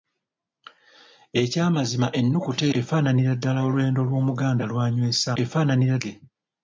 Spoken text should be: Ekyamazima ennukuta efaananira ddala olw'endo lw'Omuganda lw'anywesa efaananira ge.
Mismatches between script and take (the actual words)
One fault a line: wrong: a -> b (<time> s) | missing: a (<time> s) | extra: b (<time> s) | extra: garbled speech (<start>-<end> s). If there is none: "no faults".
no faults